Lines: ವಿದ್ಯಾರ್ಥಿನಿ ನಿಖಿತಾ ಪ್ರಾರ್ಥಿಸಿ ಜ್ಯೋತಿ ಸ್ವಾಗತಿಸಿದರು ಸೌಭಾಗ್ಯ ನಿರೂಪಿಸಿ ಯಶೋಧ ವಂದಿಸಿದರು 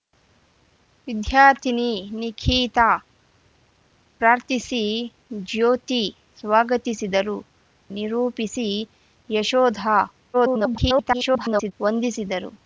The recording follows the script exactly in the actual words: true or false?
false